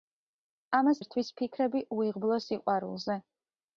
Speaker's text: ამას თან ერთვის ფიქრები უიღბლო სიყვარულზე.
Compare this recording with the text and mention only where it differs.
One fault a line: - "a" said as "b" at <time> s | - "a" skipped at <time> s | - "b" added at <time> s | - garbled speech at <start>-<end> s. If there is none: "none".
- "თან" skipped at 1.0 s